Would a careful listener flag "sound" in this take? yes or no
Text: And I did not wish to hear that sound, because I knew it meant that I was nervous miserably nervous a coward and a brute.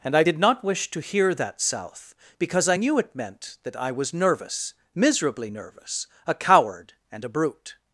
yes